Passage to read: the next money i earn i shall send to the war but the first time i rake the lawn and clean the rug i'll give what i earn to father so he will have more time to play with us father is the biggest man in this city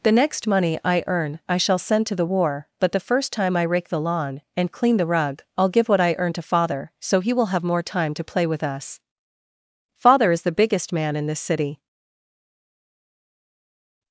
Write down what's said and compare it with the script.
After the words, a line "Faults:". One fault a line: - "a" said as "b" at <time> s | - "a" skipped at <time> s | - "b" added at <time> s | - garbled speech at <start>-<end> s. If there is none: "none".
the next money i earn i shall send to the war but the first time i rake the lawn and clean the rug i'll give what i earn to father so he will have more time to play with us father is the biggest man in this city
Faults:
none